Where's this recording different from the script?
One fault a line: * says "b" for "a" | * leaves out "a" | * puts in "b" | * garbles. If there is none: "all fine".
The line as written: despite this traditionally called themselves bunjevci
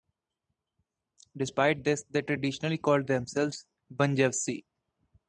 * puts in "they"